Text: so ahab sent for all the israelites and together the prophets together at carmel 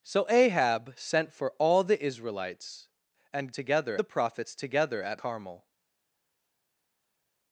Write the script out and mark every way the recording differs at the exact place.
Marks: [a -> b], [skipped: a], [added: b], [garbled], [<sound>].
so ahab sent for all the israelites and together the prophets together at carmel